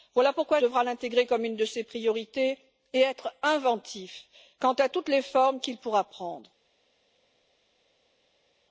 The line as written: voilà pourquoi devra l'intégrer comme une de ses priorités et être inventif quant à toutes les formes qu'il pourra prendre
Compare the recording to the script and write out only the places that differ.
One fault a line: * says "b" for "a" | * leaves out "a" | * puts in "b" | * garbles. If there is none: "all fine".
all fine